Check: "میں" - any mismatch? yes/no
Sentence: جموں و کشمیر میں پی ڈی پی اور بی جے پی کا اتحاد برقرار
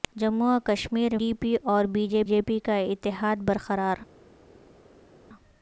yes